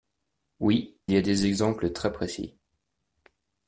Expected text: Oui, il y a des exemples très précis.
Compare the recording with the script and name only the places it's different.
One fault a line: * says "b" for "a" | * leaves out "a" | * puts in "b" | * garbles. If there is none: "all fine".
* leaves out "il"